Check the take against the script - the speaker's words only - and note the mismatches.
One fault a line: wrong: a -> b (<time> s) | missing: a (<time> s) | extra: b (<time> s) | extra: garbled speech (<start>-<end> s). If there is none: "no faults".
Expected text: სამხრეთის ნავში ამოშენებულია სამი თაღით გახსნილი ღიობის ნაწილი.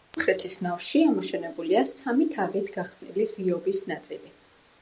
no faults